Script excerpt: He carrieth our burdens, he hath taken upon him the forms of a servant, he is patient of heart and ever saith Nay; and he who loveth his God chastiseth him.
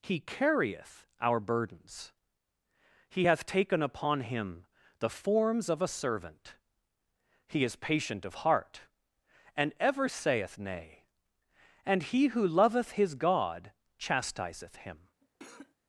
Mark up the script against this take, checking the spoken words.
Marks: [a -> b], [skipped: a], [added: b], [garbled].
He carrieth our burdens, he hath taken upon him the forms of a servant, he is patient of heart and ever saith Nay; and he who loveth his God chastiseth him.